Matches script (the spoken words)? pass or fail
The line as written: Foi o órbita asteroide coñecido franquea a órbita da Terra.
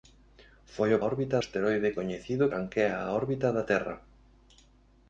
pass